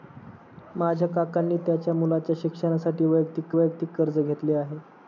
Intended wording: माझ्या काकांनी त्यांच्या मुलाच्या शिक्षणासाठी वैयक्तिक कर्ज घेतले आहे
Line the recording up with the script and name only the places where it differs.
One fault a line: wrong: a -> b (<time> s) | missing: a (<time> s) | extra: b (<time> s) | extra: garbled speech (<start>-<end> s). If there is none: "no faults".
extra: वैयक्तिक (3.5 s)